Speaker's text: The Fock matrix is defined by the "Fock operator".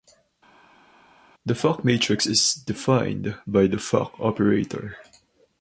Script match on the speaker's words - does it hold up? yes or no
yes